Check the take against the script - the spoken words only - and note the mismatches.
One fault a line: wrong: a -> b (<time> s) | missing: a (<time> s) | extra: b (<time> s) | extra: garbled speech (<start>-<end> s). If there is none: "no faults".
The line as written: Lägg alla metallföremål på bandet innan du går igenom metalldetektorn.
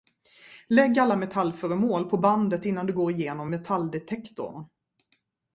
no faults